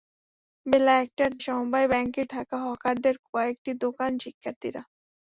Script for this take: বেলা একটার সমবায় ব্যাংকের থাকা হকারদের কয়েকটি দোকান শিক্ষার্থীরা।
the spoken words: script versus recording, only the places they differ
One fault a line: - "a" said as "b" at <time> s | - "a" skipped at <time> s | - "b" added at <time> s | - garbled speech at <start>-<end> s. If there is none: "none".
none